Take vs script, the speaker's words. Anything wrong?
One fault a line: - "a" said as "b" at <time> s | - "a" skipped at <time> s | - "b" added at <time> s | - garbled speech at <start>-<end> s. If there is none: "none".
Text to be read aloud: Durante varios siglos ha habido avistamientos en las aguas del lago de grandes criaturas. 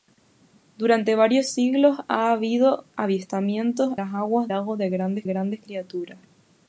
- "en" skipped at 4.0 s
- "del" skipped at 4.5 s
- "grandes" added at 5.2 s